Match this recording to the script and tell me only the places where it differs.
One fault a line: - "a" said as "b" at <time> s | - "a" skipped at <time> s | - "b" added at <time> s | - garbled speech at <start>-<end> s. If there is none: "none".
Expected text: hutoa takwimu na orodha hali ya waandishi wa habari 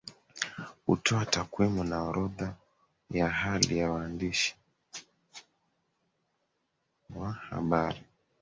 - "ya" added at 3.1 s